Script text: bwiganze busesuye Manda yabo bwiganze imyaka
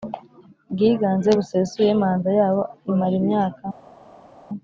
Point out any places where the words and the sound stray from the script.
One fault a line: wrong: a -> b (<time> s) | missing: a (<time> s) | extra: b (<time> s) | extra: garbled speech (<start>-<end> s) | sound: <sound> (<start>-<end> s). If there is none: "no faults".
wrong: bwiganze -> imara (2.9 s)